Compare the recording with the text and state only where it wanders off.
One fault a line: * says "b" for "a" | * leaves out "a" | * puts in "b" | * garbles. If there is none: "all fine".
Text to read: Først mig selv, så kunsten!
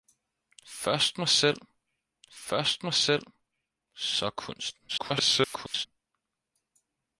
* puts in "først mig selv"
* garbles